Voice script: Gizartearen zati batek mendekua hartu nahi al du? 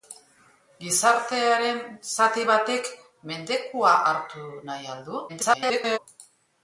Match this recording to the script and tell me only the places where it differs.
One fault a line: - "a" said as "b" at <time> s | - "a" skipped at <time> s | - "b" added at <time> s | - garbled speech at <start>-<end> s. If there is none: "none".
- garbled speech at 5.3-6.0 s